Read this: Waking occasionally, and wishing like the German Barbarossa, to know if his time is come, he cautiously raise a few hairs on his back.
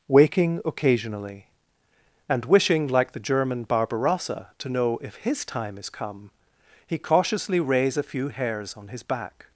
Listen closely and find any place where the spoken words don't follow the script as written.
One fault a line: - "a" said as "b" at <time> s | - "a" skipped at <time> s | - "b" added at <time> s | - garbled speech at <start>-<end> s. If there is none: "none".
none